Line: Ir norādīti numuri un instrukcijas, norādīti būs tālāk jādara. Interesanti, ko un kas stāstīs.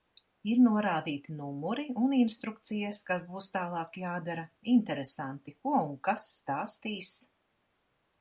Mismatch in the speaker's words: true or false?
true